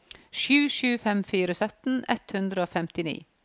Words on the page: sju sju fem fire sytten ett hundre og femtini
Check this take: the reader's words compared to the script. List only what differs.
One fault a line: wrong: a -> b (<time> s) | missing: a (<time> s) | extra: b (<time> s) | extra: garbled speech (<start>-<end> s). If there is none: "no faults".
no faults